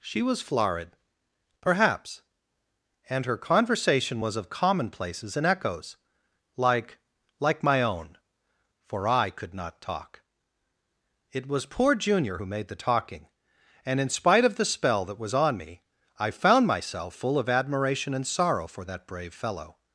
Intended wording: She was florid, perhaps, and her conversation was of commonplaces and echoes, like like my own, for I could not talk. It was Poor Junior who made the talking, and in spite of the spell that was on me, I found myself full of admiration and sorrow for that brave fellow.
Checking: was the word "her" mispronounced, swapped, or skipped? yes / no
no